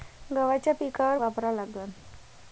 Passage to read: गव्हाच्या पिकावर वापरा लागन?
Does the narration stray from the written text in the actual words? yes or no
no